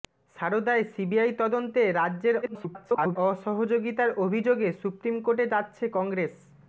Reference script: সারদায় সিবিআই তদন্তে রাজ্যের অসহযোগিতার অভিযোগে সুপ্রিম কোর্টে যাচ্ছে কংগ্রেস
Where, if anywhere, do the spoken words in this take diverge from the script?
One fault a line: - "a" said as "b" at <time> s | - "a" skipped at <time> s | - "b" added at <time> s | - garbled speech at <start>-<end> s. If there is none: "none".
- garbled speech at 2.4-3.2 s